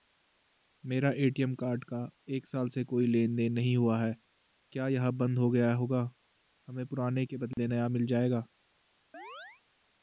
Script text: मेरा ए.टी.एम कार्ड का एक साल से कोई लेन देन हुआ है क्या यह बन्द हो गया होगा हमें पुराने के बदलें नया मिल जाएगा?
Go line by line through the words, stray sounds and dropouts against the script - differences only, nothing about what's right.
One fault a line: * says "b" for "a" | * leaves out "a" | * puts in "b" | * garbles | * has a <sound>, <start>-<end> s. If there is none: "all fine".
* puts in "नहीं"
* has a dropout, 7.5-7.6 s
* has a chirp, 9.1-9.6 s